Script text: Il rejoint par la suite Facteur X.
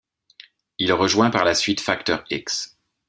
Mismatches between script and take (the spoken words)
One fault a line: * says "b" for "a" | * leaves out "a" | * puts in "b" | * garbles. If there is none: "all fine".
all fine